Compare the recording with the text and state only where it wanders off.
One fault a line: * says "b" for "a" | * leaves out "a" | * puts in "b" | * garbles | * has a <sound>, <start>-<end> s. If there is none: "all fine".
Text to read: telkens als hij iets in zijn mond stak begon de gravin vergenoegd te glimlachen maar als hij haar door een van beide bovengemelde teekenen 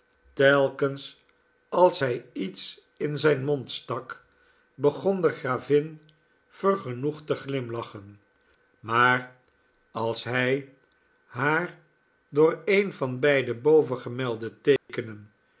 * has a dropout, 14.8-14.9 s